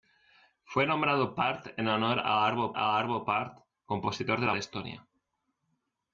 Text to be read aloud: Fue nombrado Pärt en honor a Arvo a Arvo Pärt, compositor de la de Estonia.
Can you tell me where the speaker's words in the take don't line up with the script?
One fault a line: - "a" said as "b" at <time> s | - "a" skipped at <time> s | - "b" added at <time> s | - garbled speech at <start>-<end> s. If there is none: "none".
none